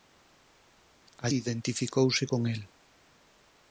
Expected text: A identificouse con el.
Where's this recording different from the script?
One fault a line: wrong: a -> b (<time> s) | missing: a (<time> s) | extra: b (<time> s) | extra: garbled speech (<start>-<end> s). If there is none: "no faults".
no faults